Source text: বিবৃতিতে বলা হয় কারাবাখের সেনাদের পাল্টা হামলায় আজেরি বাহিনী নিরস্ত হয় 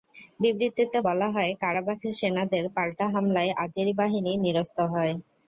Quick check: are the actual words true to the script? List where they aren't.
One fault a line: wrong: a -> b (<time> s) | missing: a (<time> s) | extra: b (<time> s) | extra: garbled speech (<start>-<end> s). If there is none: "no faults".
no faults